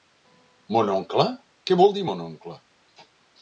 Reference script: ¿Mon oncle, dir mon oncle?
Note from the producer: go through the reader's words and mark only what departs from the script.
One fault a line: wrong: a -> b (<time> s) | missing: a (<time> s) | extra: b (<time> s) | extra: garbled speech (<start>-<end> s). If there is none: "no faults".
extra: què vol (1.7 s)